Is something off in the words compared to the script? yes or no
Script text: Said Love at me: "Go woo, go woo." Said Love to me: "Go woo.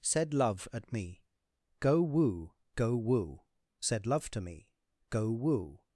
no